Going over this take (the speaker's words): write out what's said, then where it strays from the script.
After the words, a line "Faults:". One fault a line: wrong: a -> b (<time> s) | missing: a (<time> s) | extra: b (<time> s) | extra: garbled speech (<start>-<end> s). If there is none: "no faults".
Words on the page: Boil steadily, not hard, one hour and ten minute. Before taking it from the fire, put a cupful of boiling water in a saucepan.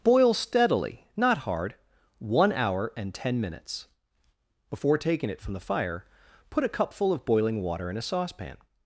Boil steadily, not hard, one hour and ten minutes. Before taking it from the fire, put a cupful of boiling water in a saucepan.
Faults:
wrong: minute -> minutes (3.4 s)